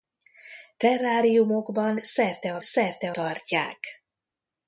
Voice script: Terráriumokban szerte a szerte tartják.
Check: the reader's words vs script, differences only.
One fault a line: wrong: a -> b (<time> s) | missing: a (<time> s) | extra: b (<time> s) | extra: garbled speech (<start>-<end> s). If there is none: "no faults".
no faults